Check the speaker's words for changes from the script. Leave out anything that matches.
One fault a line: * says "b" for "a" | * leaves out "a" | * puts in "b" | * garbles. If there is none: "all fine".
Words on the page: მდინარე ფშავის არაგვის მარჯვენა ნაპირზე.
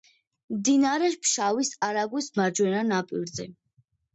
all fine